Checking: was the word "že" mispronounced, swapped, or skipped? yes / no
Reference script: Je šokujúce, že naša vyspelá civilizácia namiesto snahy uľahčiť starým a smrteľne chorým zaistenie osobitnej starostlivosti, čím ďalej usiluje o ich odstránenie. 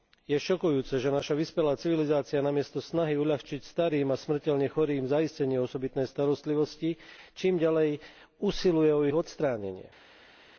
no